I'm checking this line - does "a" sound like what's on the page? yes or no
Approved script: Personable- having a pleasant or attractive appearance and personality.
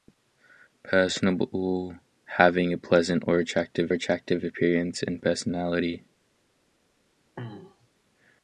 yes